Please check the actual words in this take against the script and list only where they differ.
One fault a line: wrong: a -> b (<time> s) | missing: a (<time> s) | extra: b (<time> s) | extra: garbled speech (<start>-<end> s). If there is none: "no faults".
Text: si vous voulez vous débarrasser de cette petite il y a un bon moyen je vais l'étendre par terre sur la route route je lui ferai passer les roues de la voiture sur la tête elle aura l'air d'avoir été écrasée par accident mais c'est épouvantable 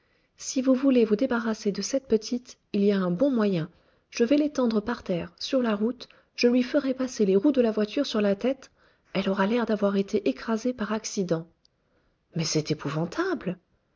missing: route (6.1 s)